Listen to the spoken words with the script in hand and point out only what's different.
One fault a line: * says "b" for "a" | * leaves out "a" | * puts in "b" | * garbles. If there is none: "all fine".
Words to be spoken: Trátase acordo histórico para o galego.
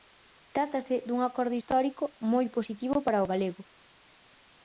* puts in "dun"
* puts in "moi positivo"